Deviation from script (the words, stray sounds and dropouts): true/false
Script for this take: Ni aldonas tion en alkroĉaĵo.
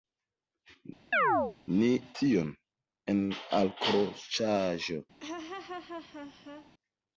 true